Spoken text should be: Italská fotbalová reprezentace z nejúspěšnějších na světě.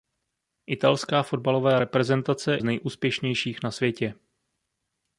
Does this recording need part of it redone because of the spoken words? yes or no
no